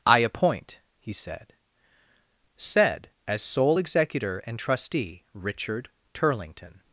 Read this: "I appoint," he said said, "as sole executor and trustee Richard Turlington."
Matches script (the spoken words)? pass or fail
pass